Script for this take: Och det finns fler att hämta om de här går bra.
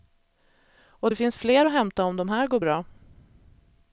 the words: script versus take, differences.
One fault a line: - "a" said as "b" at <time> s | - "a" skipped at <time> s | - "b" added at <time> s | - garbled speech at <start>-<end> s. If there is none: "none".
none